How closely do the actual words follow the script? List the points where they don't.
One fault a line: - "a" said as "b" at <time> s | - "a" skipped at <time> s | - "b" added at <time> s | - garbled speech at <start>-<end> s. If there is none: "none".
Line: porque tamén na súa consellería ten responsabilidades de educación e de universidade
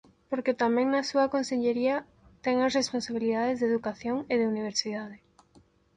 - "as" added at 2.6 s